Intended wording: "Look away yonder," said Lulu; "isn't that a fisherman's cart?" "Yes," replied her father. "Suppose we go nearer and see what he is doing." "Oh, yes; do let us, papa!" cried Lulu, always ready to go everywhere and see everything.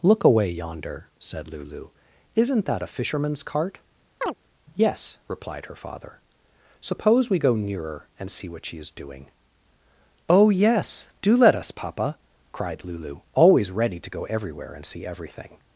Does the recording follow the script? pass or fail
fail